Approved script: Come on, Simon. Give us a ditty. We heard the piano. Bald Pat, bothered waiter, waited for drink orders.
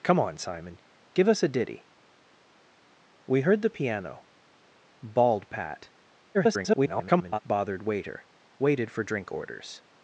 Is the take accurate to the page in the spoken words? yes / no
no